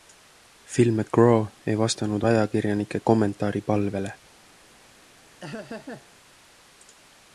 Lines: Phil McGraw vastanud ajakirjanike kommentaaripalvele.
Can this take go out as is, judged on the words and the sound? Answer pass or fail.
fail